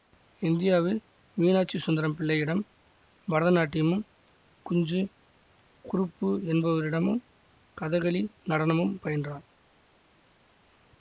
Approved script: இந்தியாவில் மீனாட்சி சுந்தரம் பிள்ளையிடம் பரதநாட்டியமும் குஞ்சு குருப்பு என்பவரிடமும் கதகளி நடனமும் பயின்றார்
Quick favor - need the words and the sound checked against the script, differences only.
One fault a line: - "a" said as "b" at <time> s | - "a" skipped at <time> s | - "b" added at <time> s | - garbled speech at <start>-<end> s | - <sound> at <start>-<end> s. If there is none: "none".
none